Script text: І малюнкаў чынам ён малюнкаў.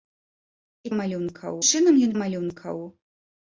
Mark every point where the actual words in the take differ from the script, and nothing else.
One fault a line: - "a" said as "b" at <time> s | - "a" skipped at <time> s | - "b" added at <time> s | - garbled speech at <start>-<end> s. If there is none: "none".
none